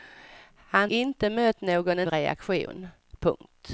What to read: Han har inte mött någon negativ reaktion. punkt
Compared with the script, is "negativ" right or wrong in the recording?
wrong